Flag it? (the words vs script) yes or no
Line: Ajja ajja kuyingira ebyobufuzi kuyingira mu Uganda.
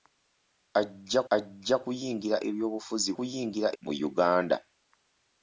no